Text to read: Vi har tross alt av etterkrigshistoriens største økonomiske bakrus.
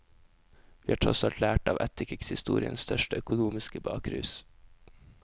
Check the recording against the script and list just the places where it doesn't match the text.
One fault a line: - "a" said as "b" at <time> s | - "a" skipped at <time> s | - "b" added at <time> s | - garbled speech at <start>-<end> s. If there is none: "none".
- "lært" added at 1.4 s